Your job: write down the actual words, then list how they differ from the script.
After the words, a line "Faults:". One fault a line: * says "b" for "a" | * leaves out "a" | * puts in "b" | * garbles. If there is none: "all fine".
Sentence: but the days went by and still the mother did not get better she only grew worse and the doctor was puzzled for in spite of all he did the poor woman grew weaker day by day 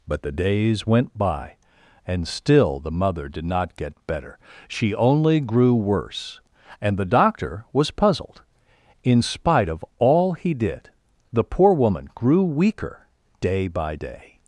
but the days went by and still the mother did not get better she only grew worse and the doctor was puzzled in spite of all he did the poor woman grew weaker day by day
Faults:
* leaves out "for"